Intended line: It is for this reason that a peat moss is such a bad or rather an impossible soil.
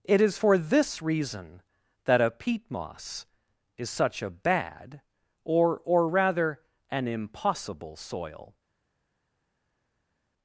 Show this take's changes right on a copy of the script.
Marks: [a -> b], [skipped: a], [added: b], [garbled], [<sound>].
It is for this reason that a peat moss is such a bad or [added: or] rather an impossible soil.